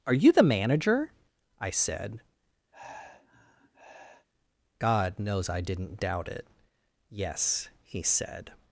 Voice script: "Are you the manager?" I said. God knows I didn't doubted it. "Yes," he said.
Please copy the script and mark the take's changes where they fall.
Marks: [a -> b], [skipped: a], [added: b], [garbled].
"Are you the manager?" I said. God knows I didn't [doubted -> doubt] it. "Yes," he said.